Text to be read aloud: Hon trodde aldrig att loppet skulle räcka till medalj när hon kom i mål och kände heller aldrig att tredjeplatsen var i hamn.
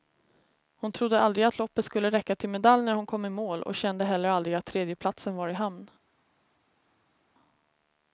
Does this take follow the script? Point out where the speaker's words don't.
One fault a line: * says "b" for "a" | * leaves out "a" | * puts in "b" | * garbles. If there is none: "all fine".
all fine